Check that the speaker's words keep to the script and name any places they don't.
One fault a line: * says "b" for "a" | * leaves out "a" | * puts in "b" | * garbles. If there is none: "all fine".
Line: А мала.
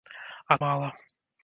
all fine